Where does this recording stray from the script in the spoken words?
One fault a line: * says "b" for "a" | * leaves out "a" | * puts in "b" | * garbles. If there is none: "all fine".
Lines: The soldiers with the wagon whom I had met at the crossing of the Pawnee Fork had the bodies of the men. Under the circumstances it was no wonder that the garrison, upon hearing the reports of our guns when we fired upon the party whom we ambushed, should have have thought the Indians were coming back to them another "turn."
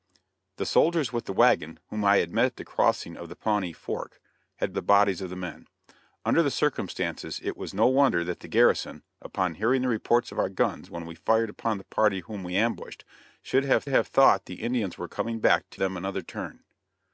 all fine